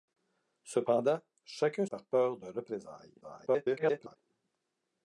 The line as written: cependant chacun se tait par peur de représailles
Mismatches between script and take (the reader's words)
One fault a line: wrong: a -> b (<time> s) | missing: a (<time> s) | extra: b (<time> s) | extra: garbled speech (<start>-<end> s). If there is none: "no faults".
missing: se tait (1.9 s)
extra: garbled speech (3.2-4.2 s)